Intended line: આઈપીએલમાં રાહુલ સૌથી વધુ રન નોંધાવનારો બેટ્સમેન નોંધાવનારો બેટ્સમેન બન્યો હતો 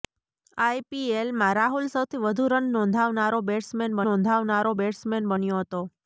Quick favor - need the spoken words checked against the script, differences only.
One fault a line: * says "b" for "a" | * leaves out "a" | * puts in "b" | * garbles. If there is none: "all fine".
all fine